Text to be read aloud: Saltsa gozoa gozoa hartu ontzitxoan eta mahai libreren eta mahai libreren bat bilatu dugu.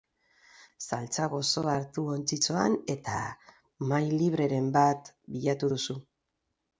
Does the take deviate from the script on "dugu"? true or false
true